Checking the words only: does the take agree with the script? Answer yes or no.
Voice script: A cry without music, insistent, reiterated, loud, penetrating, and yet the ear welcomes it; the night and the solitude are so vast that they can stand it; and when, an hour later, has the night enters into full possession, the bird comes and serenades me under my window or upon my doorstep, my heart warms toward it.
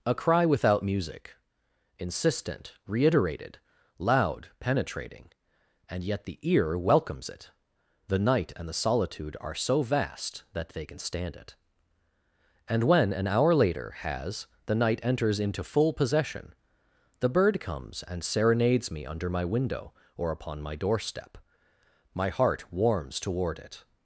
yes